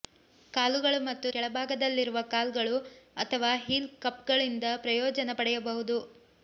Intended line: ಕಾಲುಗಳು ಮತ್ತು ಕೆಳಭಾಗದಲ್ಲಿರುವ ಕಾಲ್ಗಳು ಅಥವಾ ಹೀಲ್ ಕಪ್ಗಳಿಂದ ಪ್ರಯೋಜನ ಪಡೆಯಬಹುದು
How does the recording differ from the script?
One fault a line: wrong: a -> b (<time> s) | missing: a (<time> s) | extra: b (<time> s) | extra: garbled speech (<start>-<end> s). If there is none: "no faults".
no faults